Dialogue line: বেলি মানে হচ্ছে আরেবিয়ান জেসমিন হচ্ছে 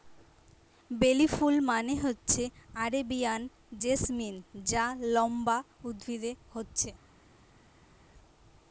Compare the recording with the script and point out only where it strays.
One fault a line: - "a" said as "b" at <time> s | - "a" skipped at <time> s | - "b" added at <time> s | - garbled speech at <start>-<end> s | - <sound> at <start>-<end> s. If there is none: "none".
- "ফুল" added at 1.3 s
- "যা লম্বা উদ্ভিদে" added at 4.7 s